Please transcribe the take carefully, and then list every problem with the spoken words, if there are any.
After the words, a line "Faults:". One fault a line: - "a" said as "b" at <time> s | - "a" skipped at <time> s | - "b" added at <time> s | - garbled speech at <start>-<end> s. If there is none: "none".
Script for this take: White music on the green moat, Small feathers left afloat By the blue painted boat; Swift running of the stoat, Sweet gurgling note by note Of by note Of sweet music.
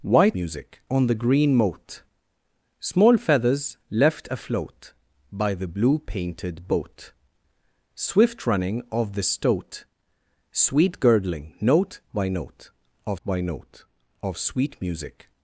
White music on the green moat, Small feathers left afloat By the blue painted boat; Swift running of the stoat, Sweet gurgling note by note Of by note Of sweet music.
Faults:
none